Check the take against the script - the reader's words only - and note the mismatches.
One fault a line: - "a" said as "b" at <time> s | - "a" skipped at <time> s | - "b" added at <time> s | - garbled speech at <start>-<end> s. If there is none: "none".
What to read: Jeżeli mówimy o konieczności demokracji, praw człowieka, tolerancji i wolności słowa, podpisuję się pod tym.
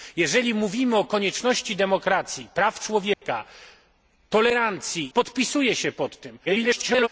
- "i wolności słowa" skipped at 5.1 s
- garbled speech at 6.4-7.1 s